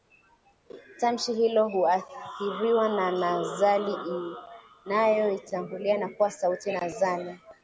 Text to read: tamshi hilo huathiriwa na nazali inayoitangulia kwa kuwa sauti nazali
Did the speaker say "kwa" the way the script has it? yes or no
no